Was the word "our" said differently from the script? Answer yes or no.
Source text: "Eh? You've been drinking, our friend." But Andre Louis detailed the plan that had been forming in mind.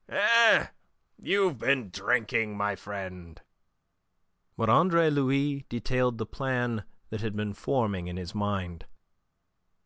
yes